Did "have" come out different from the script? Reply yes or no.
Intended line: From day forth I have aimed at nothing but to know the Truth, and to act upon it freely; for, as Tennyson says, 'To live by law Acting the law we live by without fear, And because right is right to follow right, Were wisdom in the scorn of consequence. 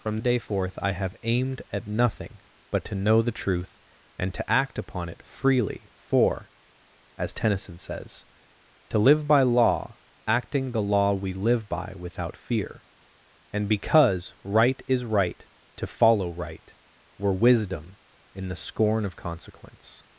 no